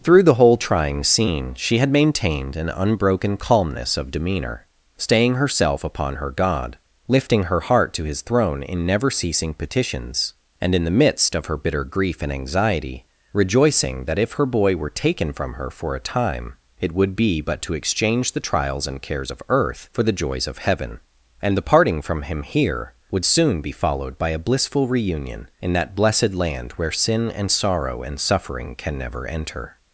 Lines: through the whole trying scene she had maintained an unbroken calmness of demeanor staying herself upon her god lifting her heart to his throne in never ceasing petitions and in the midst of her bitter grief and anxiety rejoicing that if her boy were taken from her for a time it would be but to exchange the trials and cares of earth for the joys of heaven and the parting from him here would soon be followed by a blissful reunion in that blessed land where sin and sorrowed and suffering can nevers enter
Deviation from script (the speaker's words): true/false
true